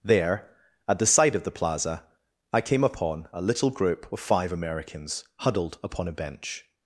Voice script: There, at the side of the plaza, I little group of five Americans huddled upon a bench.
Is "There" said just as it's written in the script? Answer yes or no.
yes